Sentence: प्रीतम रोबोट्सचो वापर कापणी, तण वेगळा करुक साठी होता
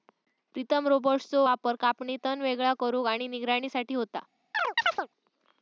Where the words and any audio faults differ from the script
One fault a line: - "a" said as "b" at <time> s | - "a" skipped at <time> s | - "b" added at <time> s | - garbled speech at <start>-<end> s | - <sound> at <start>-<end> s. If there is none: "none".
- "आणि निगराणी" added at 3.1 s
- chirp at 4.5-5.1 s